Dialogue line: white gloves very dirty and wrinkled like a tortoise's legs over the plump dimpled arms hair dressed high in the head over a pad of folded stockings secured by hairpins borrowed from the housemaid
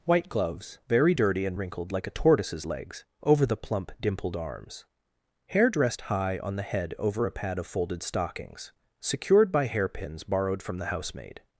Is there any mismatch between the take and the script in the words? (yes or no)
yes